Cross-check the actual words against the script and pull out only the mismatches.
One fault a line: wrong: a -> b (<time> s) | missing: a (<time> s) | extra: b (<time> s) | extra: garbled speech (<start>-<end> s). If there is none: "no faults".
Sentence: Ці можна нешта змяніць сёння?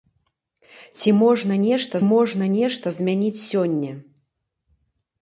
extra: можна нешта (2.1 s)